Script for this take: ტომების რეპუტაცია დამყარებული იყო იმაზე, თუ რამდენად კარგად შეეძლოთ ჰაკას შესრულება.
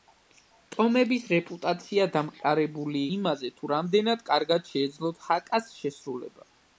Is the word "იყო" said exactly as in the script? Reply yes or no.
no